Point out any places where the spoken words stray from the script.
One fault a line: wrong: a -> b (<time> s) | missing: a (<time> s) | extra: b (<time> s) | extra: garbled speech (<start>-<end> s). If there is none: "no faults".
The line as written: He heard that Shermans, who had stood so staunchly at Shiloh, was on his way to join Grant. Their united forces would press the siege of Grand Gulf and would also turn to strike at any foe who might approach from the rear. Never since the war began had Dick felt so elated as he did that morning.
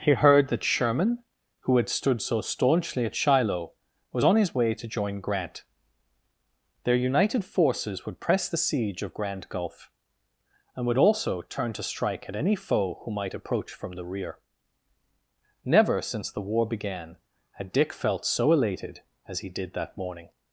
wrong: Shermans -> Sherman (0.6 s)